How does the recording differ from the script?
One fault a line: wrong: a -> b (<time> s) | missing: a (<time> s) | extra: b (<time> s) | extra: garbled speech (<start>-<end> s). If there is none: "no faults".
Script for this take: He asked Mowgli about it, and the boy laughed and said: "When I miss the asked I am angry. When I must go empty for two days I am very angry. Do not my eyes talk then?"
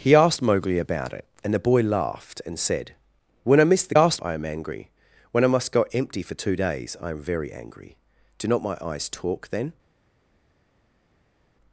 no faults